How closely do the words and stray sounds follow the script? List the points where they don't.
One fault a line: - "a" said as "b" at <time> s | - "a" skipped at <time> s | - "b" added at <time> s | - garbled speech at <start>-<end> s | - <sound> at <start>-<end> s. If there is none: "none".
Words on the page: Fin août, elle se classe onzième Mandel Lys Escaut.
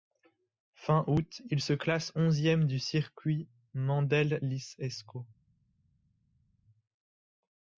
- "elle" said as "il" at 1.5 s
- "du Circuit" added at 2.7 s